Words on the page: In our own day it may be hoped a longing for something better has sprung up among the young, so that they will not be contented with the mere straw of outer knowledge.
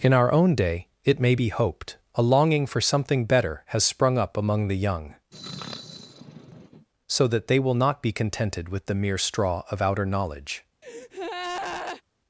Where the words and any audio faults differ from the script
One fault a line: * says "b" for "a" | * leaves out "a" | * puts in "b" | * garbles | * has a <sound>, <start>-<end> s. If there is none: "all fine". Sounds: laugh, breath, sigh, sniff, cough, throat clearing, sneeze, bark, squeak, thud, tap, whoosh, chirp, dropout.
* has a sneeze, 5.3-6.9 s
* has a breath, 10.8-12.0 s